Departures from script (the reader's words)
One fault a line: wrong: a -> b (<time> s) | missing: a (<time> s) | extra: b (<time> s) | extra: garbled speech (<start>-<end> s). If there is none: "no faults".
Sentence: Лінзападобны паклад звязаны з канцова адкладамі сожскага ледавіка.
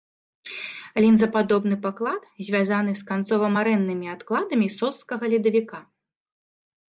extra: марэннымі (3.6 s)